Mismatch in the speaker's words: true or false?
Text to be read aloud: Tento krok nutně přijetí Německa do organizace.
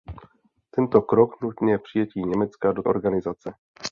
false